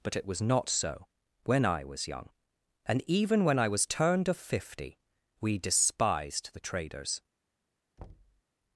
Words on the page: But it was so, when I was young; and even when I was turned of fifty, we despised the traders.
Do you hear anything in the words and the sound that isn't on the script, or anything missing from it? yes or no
yes